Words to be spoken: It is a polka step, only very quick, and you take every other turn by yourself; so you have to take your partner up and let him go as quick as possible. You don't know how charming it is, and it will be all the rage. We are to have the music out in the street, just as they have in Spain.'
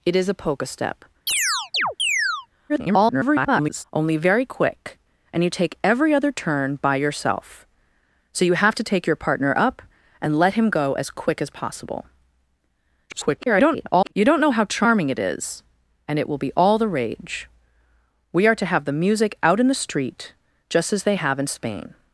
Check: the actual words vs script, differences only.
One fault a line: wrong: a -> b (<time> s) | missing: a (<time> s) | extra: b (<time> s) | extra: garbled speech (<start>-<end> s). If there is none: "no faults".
extra: garbled speech (2.7-3.8 s)
extra: garbled speech (13.1-14.1 s)